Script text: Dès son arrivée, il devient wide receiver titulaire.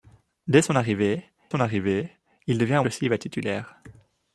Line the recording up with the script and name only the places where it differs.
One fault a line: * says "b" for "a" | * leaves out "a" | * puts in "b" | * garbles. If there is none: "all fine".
* puts in "son arrivée"
* leaves out "wide"